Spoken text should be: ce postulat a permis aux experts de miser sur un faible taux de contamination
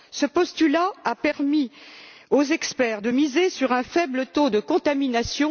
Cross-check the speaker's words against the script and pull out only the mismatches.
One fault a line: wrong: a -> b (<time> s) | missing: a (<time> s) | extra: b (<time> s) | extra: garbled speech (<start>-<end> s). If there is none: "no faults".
no faults